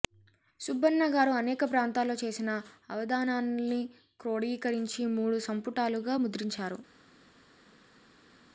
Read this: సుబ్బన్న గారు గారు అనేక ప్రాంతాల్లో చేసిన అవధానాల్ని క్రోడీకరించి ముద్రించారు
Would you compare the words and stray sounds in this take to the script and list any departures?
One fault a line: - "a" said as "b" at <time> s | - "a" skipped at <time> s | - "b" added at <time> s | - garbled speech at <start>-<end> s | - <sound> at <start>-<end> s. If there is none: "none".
- "గారు" skipped at 1.3 s
- "మూడు సంపుటాలుగా" added at 5.2 s